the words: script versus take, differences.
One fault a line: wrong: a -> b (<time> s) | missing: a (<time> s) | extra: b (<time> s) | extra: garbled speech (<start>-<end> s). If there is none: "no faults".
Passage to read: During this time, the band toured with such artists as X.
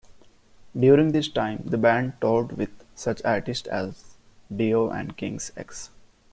extra: Dio and King's (4.6 s)